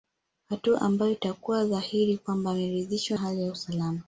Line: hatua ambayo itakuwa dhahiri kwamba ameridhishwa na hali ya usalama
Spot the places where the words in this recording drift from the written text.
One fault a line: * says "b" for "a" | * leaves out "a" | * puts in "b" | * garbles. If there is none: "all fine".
* leaves out "na"